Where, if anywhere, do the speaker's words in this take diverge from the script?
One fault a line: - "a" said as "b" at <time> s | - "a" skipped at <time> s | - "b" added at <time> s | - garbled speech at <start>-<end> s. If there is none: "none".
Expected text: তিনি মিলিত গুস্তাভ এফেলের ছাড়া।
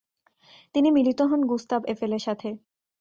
- "হন" added at 1.2 s
- "ছাড়া" said as "সাথে" at 2.2 s